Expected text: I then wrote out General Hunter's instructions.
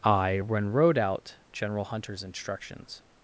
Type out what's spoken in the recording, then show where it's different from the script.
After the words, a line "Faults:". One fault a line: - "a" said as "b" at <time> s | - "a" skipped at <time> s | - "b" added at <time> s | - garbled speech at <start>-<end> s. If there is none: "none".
I when wrote out General Hunter's instructions.
Faults:
- "then" said as "when" at 0.4 s